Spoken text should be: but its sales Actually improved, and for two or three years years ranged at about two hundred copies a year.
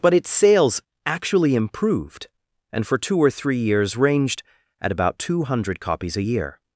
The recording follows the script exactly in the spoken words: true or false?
false